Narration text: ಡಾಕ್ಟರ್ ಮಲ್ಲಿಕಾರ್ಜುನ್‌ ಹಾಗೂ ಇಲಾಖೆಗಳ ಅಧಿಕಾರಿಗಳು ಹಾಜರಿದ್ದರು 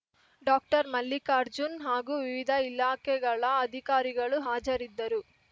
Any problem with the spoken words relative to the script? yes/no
yes